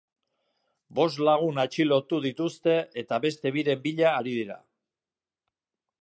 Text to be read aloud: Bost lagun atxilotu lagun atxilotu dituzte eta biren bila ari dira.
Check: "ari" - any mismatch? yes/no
no